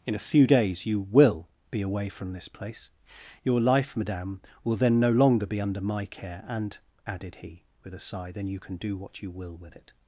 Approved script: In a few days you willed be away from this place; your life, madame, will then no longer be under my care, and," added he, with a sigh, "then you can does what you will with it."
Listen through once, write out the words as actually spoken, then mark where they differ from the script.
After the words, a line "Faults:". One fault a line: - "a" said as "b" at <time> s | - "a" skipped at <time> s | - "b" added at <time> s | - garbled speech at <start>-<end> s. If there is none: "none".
In a few days you will be away from this place; your life, madame, will then no longer be under my care, and," added he, with a sigh, "then you can do what you will with it."
Faults:
- "willed" said as "will" at 1.0 s
- "does" said as "do" at 8.8 s